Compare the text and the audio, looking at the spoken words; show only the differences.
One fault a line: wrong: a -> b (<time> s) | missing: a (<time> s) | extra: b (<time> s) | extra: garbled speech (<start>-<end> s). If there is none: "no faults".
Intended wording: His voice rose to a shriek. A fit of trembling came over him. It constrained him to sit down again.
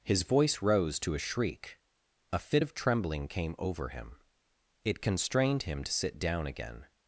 no faults